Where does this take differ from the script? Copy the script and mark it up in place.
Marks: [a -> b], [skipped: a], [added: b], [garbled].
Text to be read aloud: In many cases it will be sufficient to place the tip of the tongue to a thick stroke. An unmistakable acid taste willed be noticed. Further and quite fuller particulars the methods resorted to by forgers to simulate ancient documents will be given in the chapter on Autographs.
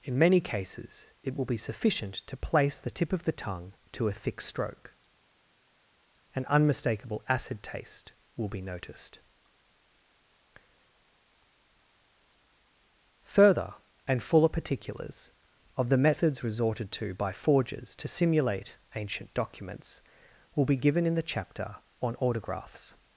In many cases it will be sufficient to place the tip of the tongue to a thick stroke. An unmistakable acid taste [willed -> will] be noticed. Further and [skipped: quite] fuller particulars [added: of] the methods resorted to by forgers to simulate ancient documents will be given in the chapter on Autographs.